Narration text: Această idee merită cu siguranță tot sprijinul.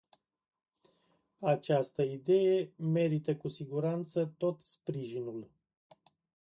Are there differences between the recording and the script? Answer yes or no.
no